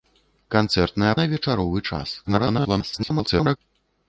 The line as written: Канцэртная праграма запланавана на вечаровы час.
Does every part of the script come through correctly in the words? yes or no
no